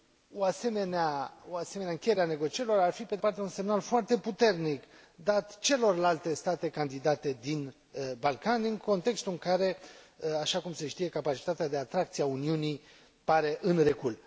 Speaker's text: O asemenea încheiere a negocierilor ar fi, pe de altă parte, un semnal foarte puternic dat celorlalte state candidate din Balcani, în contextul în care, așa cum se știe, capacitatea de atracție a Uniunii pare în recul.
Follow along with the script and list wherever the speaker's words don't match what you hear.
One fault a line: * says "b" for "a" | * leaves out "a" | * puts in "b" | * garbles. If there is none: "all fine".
* leaves out "altă"